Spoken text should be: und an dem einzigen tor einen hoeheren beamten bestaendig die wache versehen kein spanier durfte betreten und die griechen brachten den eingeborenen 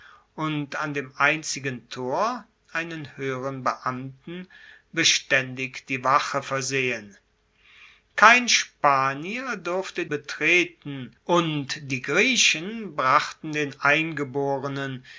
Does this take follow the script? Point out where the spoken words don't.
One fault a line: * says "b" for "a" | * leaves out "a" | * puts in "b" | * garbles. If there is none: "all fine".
all fine